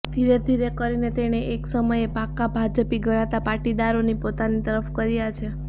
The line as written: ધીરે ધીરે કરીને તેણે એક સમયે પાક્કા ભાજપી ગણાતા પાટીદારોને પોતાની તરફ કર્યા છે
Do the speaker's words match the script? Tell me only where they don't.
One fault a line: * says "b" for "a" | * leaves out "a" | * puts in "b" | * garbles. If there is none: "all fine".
all fine